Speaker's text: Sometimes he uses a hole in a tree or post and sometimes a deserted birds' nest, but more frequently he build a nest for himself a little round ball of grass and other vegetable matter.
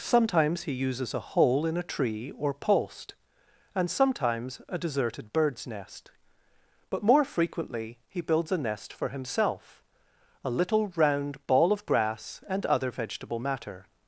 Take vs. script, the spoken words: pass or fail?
fail